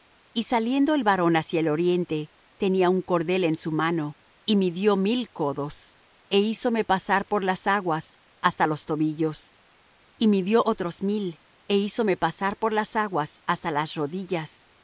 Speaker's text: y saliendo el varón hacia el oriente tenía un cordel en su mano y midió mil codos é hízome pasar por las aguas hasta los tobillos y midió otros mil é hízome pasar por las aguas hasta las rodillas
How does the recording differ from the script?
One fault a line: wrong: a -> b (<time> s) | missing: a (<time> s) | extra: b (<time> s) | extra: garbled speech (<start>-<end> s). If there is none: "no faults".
no faults